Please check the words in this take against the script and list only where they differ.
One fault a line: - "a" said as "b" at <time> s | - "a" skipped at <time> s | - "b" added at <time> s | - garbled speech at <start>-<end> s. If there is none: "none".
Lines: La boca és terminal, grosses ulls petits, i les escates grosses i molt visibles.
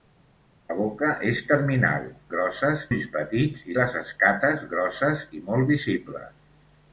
none